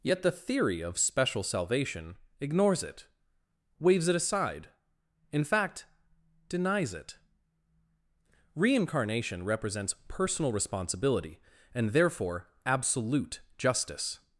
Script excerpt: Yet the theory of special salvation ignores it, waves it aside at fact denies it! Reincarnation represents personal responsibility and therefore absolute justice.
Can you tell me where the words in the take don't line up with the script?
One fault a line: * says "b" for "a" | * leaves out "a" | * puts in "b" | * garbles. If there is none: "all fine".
* says "in" for "at"